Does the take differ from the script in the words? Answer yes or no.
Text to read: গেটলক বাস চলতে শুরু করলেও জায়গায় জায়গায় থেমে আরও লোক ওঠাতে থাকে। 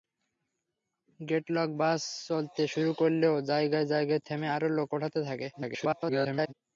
yes